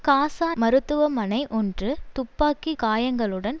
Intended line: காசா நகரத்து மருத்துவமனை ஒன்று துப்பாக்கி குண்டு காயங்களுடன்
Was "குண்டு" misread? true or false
true